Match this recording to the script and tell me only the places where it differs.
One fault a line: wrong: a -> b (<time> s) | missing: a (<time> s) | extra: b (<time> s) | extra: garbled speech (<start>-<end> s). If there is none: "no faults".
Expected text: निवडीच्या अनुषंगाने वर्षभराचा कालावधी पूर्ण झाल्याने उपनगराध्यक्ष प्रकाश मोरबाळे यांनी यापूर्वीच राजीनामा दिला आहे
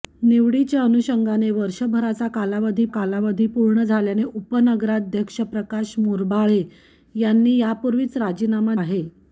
extra: कालावधी (2.9 s)
missing: दिला (8.7 s)